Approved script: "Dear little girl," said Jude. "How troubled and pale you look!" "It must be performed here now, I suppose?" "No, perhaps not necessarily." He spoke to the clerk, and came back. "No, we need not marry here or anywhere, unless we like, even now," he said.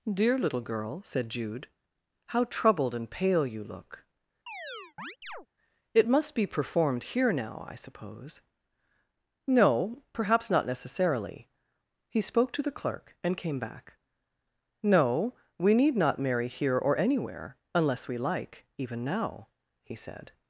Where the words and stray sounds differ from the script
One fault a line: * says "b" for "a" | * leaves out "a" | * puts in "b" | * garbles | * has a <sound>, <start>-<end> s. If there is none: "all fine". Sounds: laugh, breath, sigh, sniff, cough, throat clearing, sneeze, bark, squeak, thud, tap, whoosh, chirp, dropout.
* has a chirp, 4.5-5.5 s